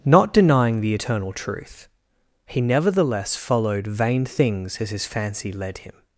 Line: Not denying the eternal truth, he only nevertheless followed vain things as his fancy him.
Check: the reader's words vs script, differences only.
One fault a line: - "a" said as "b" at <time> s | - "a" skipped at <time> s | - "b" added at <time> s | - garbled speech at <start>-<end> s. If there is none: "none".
- "only" skipped at 2.6 s
- "led" added at 5.5 s